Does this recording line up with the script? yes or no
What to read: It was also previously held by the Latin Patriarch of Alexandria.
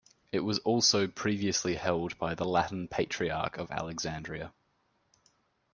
yes